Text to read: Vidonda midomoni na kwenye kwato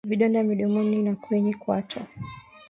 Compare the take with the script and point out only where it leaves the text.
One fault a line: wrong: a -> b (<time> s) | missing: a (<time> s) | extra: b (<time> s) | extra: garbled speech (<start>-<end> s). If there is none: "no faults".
no faults